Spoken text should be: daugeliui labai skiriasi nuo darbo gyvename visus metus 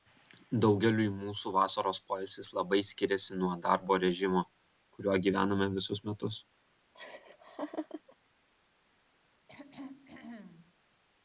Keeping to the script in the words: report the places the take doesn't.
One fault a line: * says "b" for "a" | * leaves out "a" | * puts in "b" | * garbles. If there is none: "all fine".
* puts in "mūsų vasaros poilsis"
* puts in "režimo kuriuo"